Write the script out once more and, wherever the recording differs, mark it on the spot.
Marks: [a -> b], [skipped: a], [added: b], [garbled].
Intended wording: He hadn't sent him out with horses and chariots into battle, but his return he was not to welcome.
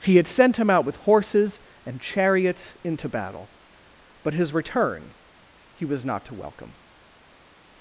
He [hadn't -> had] sent him out with horses and chariots into battle, but his return he was not to welcome.